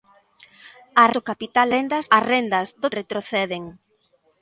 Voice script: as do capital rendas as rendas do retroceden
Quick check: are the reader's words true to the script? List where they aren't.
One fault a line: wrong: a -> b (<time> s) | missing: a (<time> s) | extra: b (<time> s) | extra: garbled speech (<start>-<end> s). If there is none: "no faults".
no faults